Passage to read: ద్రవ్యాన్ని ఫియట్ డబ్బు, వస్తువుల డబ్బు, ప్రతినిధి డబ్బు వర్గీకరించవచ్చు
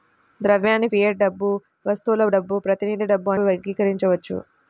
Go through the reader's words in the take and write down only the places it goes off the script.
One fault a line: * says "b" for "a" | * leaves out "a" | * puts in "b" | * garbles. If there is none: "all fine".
all fine